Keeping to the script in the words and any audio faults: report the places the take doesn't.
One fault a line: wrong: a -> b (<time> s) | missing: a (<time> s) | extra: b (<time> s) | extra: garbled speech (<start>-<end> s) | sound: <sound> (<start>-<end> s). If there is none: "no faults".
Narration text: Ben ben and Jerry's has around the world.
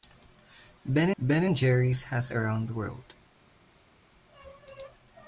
no faults